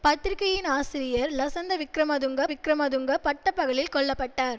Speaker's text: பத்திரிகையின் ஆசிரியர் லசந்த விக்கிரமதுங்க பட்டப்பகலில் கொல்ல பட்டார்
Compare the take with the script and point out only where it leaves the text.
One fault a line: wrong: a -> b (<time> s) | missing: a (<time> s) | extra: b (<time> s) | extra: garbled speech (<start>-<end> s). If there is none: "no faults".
extra: விக்கிரமதுங்க (2.5 s)